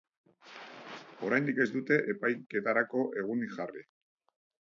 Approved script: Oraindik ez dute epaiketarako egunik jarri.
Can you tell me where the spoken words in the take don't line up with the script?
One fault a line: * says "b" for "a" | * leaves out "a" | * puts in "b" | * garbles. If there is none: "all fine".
all fine